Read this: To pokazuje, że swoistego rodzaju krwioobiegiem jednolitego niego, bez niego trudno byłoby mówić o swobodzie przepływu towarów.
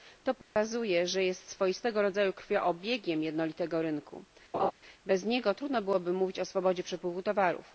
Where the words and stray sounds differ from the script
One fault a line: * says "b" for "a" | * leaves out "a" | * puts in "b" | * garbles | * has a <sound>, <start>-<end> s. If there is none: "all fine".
* has a dropout, 0.4-0.6 s
* puts in "jest"
* says "rynku" for "niego"
* has a laugh, 4.5-4.7 s